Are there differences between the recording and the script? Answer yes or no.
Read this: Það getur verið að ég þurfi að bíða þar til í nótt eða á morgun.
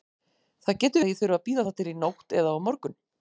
yes